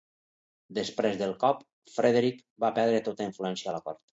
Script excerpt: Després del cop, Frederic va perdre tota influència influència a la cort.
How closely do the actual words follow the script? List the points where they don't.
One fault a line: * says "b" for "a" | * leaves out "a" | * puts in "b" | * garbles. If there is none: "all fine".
* leaves out "influència"